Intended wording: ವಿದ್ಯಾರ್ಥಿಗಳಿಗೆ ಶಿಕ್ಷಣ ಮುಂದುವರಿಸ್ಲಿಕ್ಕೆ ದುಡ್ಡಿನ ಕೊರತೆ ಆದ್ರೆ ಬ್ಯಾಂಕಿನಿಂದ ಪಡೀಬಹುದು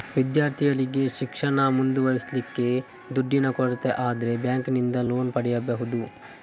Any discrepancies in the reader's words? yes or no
yes